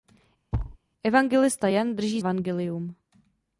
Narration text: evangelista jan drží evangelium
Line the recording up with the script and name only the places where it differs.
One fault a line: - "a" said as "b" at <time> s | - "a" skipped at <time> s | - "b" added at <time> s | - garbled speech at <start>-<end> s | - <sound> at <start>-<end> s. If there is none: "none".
- thud at 0.5-0.8 s